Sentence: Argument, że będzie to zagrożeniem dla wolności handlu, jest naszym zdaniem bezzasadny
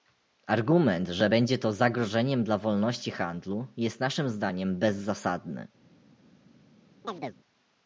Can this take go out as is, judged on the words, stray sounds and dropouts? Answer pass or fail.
fail